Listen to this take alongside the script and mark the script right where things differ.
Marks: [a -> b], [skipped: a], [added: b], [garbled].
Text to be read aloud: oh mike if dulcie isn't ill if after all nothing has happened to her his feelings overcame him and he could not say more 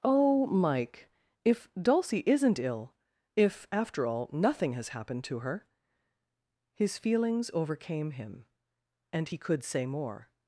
oh mike if dulcie isn't ill if after all nothing has happened to her his feelings overcame him and he could [skipped: not] say more